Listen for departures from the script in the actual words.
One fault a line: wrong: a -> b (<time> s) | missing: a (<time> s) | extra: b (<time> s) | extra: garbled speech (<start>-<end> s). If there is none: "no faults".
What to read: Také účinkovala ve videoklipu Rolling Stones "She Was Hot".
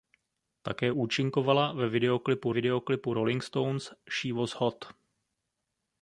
extra: videoklipu (2.5 s)